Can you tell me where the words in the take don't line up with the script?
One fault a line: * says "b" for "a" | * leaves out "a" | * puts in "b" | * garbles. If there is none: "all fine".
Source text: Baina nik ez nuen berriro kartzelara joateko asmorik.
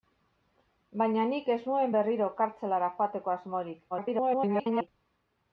* garbles